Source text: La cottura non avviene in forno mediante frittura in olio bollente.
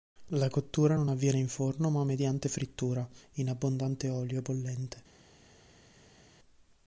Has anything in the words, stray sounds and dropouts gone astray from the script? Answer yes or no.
yes